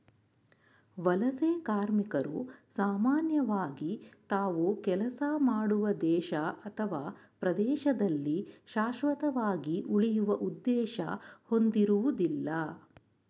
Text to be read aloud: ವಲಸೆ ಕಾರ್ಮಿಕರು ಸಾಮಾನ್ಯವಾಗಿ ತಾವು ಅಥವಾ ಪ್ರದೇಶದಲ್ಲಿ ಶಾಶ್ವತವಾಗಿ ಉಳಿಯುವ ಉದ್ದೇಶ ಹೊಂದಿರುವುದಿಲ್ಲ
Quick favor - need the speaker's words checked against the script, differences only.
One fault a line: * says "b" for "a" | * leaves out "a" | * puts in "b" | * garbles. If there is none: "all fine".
* puts in "ಕೆಲಸ ಮಾಡುವ ದೇಶ"